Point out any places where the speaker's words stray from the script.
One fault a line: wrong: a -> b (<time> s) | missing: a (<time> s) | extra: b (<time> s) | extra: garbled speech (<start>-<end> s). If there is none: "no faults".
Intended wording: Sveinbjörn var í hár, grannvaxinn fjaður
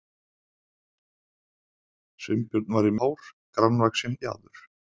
no faults